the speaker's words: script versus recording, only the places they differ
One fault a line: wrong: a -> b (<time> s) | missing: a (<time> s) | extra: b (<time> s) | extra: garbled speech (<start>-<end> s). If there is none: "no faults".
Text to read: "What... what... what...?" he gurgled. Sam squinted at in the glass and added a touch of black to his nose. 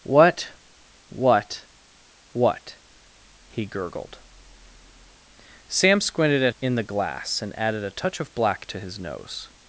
no faults